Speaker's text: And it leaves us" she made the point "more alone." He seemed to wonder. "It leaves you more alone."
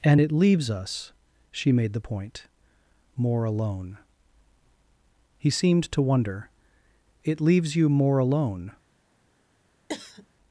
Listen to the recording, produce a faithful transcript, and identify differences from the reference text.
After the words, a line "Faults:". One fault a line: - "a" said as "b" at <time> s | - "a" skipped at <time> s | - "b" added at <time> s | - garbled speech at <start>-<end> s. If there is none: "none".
And it leaves us" she made the point "more alone." He seemed to wonder. "It leaves you more alone."
Faults:
none